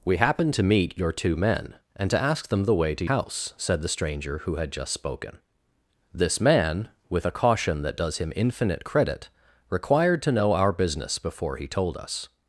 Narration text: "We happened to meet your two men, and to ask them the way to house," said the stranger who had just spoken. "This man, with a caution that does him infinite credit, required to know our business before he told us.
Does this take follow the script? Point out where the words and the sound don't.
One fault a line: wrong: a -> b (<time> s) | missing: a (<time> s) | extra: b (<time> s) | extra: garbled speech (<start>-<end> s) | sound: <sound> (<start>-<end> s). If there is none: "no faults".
no faults